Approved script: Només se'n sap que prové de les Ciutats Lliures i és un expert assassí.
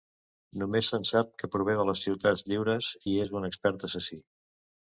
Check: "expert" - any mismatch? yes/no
no